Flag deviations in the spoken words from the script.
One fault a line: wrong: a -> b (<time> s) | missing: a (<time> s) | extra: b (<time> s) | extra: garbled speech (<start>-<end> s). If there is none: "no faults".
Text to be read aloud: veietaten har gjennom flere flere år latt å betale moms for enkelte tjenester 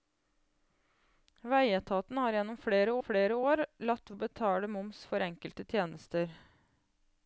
no faults